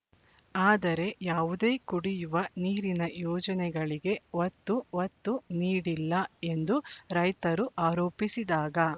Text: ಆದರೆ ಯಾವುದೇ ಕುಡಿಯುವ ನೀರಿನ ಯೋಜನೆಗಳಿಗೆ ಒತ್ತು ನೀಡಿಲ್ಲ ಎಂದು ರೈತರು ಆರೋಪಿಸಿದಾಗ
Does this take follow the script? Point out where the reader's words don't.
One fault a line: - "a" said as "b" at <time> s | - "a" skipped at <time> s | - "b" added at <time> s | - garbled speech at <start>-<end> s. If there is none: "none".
- "ಒತ್ತು" added at 5.0 s